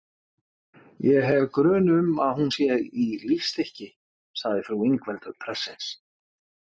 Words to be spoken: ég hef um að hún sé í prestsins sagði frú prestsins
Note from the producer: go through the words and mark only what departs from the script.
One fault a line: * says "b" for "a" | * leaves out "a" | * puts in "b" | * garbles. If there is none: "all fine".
* puts in "grun"
* says "lífstykki" for "prestsins"
* puts in "ingveldur"